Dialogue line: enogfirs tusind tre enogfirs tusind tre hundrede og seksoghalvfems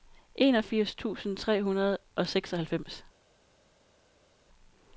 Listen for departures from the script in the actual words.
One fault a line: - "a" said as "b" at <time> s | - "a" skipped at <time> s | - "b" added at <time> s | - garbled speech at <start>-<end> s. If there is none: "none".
- "enogfirs tusind tre" skipped at 1.6 s